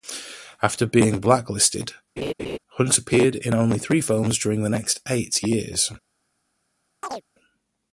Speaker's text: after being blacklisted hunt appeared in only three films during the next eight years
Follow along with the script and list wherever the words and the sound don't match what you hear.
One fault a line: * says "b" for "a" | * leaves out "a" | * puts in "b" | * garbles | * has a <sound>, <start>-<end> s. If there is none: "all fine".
* has a laugh, 2.2-2.6 s
* has a chirp, 7.0-7.2 s